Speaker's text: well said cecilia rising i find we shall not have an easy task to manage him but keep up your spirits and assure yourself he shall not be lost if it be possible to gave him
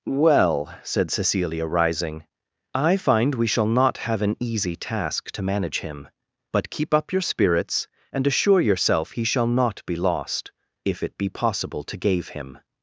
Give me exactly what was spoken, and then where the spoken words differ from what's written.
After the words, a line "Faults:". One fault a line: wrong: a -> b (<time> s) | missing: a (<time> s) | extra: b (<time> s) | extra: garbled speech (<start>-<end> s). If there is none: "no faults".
well said cecilia rising i find we shall not have an easy task to manage him but keep up your spirits and assure yourself he shall not be lost if it be possible to gave him
Faults:
no faults